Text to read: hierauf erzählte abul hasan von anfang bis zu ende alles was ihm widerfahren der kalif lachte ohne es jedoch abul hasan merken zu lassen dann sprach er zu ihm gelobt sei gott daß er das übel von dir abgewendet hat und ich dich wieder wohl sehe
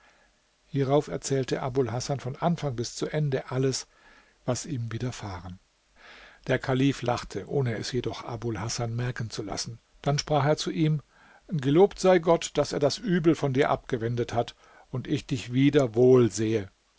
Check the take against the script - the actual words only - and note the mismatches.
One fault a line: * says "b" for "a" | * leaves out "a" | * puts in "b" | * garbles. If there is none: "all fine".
all fine